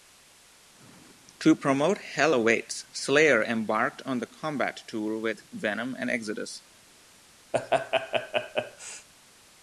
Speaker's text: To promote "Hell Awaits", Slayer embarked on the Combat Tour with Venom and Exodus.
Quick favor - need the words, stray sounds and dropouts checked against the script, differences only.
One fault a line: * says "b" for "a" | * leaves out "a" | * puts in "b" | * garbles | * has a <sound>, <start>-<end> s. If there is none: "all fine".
* has a laugh, 7.5-9.1 s